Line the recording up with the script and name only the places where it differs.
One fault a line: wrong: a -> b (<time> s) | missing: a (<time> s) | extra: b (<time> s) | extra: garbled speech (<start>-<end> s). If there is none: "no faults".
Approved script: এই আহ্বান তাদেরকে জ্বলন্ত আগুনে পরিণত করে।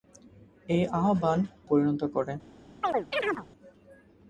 missing: তাদেরকে জ্বলন্ত আগুনে (1.4 s)